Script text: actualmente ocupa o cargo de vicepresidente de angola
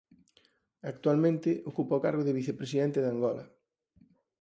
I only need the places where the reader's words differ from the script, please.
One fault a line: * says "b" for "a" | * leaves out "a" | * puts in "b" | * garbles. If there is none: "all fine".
all fine